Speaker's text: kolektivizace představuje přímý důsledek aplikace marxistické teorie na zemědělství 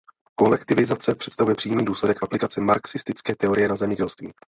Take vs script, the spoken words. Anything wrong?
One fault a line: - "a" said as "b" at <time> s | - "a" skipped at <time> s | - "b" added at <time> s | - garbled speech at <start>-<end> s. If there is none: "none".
none